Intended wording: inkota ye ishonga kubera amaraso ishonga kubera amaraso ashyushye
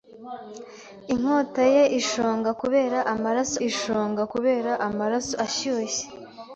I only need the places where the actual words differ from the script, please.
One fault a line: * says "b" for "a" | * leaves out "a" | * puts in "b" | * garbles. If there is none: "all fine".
all fine